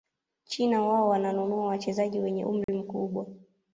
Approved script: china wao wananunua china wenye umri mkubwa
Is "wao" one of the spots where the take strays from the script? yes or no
no